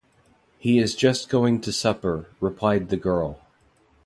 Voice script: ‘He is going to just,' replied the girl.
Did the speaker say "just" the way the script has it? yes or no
no